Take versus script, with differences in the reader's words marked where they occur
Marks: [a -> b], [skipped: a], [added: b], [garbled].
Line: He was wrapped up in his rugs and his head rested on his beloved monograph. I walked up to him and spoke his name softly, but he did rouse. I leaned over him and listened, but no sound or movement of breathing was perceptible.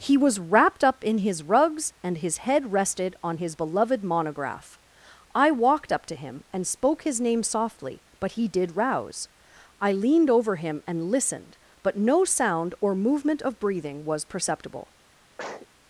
He was wrapped up in his rugs and his head rested on his beloved monograph. I walked up to him and spoke his name softly, but he did rouse. I leaned over him and listened, but no sound or movement of breathing was perceptible.